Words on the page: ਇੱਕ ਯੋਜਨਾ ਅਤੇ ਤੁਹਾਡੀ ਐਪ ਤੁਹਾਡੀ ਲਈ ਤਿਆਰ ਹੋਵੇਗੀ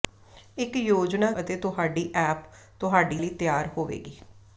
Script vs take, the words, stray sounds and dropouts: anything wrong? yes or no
no